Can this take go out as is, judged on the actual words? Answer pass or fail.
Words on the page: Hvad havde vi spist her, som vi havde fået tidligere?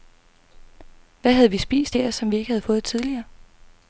fail